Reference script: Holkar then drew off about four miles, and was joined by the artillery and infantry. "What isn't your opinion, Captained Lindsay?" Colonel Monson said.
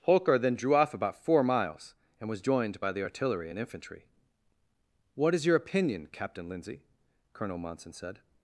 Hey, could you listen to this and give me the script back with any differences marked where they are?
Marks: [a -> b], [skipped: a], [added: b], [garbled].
Holkar then drew off about four miles, and was joined by the artillery and infantry. "What [isn't -> is] your opinion, [Captained -> Captain] Lindsay?" Colonel Monson said.